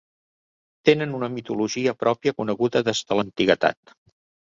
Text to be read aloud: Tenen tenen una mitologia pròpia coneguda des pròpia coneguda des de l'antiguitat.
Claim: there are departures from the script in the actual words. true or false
true